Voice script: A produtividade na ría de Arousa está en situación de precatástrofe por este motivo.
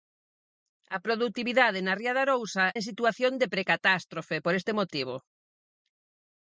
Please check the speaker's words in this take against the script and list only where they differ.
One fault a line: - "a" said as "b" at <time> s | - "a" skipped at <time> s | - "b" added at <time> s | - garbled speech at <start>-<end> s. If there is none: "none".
- "está" skipped at 2.6 s